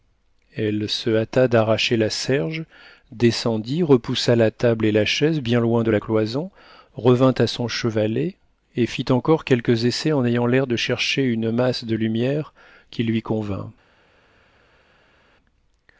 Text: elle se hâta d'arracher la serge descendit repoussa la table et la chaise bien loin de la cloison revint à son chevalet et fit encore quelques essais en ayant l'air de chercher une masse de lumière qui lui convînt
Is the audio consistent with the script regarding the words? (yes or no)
yes